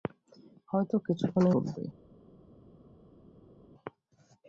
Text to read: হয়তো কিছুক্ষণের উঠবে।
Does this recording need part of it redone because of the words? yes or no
no